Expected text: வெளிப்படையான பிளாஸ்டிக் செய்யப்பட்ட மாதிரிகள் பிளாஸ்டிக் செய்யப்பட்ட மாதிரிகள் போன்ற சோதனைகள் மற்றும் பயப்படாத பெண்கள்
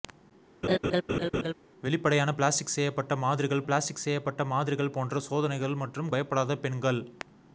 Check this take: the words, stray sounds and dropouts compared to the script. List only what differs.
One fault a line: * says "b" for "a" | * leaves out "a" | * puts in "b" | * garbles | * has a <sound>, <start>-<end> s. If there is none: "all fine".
* has a laugh, 0.6-1.5 s